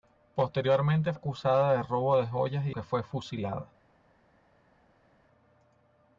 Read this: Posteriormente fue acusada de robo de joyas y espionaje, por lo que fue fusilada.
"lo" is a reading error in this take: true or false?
true